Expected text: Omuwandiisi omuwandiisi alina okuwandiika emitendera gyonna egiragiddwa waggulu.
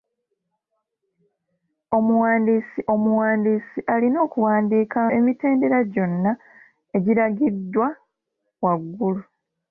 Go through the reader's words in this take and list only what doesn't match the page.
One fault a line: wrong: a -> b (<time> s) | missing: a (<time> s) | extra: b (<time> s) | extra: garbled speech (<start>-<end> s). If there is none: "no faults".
no faults